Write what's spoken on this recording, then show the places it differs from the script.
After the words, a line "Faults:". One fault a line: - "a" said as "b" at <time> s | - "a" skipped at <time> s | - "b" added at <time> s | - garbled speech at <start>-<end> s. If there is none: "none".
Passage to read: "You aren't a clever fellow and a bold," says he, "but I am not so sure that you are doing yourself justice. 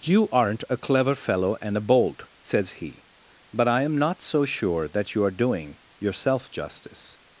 "You aren't a clever fellow and a bold," says he, "but I am not so sure that you are doing yourself justice.
Faults:
none